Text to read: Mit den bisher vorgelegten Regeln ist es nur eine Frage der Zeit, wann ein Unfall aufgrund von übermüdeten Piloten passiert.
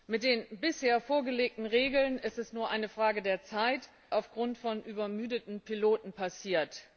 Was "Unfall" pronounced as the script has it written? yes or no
no